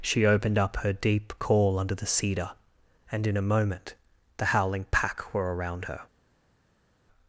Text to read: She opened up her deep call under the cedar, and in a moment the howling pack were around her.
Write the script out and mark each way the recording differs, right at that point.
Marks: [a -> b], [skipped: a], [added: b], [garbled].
She opened up her deep call under the cedar, and in a moment the howling pack were around her.